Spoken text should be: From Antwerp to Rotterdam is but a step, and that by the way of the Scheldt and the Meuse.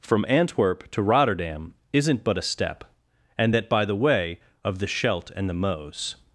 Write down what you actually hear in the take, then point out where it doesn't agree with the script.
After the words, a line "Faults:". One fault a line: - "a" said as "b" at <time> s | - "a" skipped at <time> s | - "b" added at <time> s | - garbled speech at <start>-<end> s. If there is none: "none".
From Antwerp to Rotterdam isn't but a step, and that by the way of the Scheldt and the Meuse.
Faults:
- "is" said as "isn't" at 1.9 s